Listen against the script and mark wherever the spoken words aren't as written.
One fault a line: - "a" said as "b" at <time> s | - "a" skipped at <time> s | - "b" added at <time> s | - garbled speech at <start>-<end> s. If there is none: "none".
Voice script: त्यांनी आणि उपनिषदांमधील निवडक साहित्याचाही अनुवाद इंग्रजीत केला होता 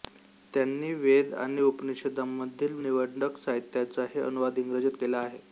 - "वेद" added at 0.9 s
- "होता" said as "आहे" at 5.2 s